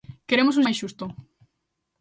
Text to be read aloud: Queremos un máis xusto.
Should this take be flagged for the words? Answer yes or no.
no